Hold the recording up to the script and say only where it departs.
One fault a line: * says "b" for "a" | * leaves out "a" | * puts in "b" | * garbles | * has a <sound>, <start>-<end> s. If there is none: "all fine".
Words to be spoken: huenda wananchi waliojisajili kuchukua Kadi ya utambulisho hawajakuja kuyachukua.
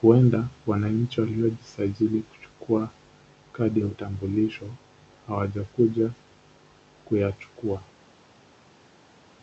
all fine